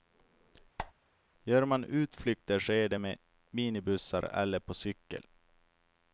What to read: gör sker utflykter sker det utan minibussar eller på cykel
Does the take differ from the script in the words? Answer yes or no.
yes